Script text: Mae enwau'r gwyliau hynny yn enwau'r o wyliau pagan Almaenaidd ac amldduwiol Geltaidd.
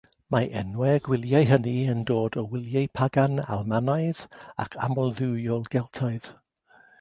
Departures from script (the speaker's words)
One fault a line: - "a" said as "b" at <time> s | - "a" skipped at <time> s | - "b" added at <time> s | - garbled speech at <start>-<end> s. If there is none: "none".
- "enwau'r" said as "dod" at 2.1 s